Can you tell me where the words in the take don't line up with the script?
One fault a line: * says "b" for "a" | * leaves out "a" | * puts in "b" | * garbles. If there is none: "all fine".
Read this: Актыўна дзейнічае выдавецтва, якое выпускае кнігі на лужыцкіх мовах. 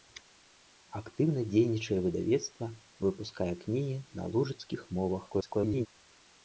* leaves out "якое"
* garbles